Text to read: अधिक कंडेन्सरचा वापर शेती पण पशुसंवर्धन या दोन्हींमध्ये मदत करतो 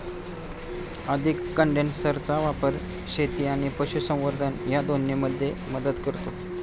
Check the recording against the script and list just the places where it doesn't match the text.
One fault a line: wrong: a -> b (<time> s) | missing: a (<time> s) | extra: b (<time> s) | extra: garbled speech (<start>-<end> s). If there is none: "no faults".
wrong: पण -> आणि (3.5 s)